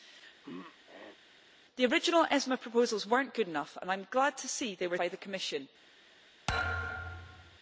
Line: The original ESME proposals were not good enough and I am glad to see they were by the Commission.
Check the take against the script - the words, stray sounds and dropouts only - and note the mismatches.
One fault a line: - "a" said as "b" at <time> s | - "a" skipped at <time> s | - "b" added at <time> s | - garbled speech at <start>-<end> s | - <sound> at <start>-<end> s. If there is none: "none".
- throat clearing at 0.4-1.2 s
- thud at 6.5-7.6 s